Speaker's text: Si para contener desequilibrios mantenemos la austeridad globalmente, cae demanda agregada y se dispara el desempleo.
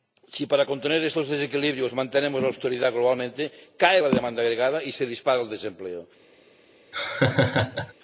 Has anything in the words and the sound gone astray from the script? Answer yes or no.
yes